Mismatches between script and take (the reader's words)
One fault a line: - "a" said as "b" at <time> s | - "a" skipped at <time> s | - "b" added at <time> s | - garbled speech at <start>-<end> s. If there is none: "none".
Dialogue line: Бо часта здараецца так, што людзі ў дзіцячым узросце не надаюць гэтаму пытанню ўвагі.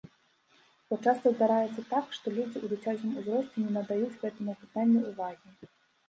none